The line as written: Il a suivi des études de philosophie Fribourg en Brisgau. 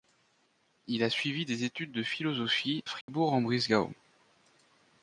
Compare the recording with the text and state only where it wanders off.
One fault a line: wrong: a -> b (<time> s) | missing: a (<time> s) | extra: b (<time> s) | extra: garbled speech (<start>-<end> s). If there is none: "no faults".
no faults